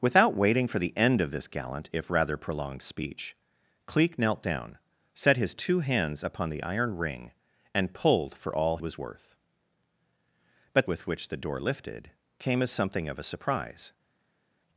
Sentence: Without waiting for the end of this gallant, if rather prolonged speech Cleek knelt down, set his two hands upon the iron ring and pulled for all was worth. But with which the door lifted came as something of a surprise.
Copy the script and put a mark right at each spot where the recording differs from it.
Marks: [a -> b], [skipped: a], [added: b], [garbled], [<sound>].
Without waiting for the end of this gallant, if rather prolonged speech Cleek knelt down, set his two hands upon the iron ring and pulled for all was worth. But with which the door lifted came as something of a surprise.